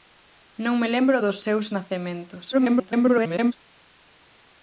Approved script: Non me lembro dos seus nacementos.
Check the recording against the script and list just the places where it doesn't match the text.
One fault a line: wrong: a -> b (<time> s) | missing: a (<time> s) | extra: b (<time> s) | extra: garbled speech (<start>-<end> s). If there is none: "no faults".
extra: garbled speech (2.5-3.5 s)